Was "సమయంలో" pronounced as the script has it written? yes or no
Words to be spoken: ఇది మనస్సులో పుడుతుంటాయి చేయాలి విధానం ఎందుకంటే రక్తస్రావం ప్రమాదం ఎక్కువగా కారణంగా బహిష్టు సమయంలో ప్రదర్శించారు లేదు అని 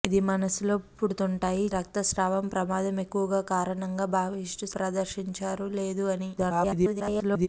no